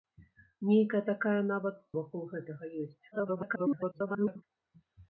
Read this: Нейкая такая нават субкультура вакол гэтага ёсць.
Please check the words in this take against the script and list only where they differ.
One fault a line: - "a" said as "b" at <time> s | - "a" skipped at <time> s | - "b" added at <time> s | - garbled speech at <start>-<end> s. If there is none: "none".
- "субкультура" skipped at 1.8 s
- garbled speech at 3.1-4.4 s